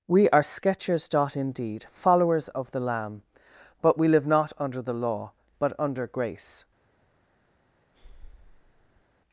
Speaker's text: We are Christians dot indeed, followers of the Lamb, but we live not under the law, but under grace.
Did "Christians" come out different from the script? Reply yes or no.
yes